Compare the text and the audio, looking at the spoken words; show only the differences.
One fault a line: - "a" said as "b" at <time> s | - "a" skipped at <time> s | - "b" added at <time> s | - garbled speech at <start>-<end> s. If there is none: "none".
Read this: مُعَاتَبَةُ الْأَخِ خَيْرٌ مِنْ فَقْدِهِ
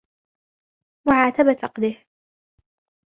- "الْأَخِ خَيْرٌ مِنْ" skipped at 1.6 s